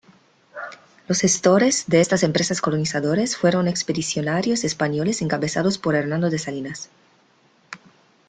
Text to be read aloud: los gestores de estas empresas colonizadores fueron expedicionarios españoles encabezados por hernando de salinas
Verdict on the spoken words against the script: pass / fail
pass